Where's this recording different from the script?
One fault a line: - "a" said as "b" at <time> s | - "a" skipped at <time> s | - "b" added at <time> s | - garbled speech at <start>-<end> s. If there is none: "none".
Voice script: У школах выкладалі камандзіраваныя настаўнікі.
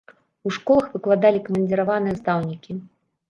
none